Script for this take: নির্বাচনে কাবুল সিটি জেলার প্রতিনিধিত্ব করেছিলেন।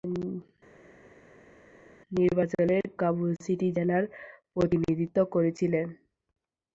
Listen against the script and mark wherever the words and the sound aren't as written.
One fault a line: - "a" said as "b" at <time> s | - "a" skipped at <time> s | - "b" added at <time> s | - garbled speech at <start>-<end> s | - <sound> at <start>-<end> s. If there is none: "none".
none